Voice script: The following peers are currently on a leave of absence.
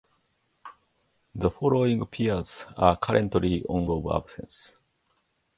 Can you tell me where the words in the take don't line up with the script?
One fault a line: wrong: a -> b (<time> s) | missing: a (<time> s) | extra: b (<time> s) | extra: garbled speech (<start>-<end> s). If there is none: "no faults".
missing: a leave (3.9 s)